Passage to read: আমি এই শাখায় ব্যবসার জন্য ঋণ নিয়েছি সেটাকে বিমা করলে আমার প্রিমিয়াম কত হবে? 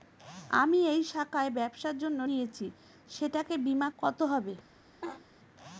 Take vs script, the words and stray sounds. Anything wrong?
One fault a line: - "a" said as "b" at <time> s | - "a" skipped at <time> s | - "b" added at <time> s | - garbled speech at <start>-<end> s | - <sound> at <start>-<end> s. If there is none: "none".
- "ঋণ" skipped at 2.2 s
- "করলে আমার প্রিমিয়াম" skipped at 3.9 s
- laugh at 5.0-5.3 s